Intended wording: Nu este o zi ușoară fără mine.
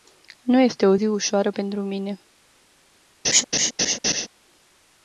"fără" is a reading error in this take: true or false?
true